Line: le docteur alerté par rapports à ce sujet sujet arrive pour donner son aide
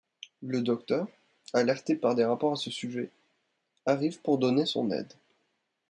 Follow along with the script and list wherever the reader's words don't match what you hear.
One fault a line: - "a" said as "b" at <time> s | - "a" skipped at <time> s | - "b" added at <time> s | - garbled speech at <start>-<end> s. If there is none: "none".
- "des" added at 2.1 s
- "sujet" skipped at 3.1 s